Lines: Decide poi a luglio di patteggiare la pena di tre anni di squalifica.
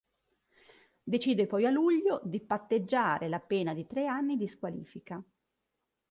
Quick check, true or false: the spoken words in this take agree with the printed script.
true